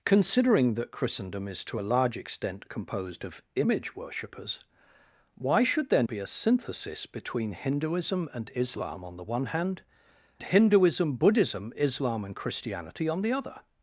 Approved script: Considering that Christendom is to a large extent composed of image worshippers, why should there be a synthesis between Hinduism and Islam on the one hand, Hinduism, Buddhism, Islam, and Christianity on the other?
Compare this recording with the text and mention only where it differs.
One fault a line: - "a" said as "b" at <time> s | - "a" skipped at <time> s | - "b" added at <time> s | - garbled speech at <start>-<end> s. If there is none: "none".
none